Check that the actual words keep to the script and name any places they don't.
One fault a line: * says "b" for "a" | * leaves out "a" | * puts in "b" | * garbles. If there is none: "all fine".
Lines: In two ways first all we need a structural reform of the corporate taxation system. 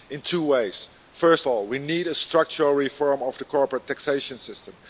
all fine